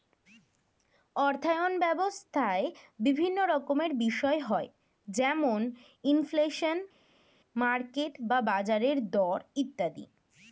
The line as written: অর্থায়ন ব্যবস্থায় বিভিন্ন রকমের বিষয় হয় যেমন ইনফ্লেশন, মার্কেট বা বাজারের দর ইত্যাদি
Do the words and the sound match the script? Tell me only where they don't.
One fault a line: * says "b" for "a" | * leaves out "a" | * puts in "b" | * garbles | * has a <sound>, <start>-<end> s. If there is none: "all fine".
all fine